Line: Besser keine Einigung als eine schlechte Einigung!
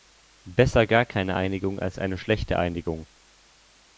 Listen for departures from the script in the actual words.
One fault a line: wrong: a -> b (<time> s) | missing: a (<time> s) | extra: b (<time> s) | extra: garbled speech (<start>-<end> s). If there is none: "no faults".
extra: gar (0.9 s)